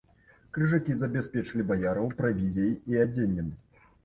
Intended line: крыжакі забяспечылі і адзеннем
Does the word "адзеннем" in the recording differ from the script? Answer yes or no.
no